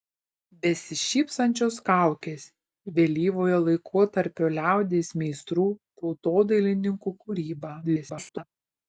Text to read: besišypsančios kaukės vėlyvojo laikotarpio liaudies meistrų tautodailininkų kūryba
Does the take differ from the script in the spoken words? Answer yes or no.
yes